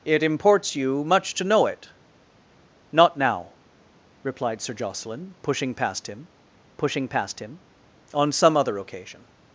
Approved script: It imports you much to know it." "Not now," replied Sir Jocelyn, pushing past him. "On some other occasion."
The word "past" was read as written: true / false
true